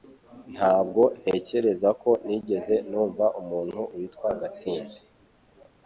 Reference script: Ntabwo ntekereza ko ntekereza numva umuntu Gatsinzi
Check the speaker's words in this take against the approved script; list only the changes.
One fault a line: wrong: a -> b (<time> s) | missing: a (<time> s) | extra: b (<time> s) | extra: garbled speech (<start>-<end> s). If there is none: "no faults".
wrong: ntekereza -> nigeze (2.2 s)
extra: witwa (4.0 s)